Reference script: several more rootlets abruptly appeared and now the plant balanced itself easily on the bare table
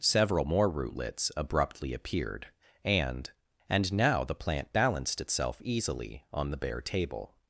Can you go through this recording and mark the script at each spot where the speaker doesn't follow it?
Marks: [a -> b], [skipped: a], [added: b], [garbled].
several more rootlets abruptly appeared and [added: and] now the plant balanced itself easily on the bare table